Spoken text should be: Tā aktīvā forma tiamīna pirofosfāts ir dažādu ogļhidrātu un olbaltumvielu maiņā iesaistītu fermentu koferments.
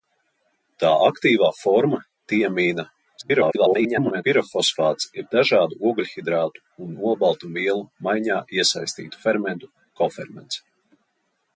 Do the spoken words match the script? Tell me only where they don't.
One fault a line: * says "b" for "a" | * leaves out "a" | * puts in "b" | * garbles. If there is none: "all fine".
* garbles